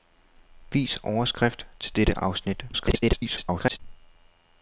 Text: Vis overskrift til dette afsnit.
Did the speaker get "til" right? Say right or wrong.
right